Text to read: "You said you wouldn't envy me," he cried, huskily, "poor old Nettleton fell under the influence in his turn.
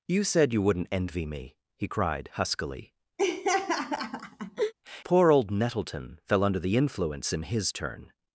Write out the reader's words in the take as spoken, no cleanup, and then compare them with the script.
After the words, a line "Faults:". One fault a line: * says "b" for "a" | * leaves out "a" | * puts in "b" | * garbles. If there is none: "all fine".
"You said you wouldn't envy me," he cried, huskily, "poor old Nettleton fell under the influence in his turn.
Faults:
all fine